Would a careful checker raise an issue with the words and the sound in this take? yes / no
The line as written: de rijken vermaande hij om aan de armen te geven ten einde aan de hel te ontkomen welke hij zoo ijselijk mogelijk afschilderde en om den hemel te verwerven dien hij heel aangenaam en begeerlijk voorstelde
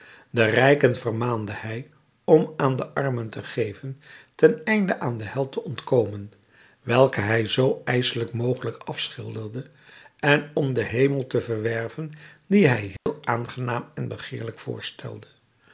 yes